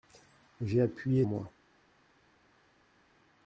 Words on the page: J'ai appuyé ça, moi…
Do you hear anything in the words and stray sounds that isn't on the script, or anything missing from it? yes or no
yes